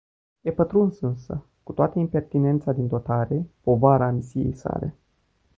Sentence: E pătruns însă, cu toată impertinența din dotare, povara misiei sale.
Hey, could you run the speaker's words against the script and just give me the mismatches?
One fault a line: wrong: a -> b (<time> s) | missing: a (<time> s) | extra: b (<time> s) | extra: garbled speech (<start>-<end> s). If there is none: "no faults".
no faults